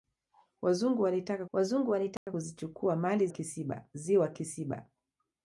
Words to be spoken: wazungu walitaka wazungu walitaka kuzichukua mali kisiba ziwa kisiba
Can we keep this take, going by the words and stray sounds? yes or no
no